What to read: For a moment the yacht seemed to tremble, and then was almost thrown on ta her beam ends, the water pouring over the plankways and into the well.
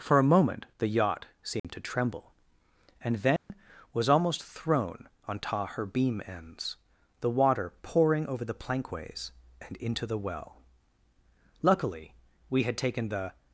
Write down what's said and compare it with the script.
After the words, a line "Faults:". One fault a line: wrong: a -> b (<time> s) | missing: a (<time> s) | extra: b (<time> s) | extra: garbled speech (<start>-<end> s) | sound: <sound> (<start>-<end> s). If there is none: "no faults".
For a moment the yacht seemed to tremble, and then was almost thrown on ta her beam ends, the water pouring over the plankways and into the well. Luckily, we had taken the
Faults:
sound: dropout (1.6-1.6 s)
sound: dropout (3.4-3.5 s)
extra: Luckily we had taken the (11.6 s)